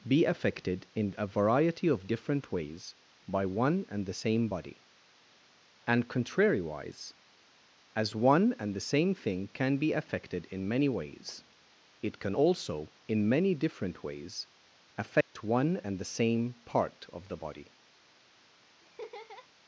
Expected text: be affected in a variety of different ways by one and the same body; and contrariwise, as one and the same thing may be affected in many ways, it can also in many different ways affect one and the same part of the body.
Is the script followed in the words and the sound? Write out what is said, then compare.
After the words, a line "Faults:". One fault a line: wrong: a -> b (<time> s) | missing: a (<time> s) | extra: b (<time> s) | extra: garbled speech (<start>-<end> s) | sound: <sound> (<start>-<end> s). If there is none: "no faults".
be affected in a variety of different ways by one and the same body; and contrariwise, as one and the same thing can be affected in many ways, it can also in many different ways affect one and the same part of the body.
Faults:
wrong: may -> can (9.5 s)
sound: dropout (15.2-15.4 s)
sound: laugh (18.8-19.5 s)